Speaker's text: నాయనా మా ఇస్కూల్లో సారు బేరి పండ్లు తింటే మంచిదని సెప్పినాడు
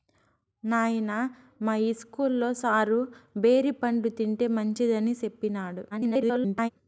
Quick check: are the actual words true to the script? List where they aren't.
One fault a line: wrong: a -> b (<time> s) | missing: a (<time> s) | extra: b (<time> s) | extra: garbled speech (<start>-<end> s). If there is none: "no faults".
extra: garbled speech (5.9-6.7 s)